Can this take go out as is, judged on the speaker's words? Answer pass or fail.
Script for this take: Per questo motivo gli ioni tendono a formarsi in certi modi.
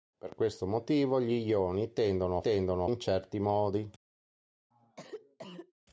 fail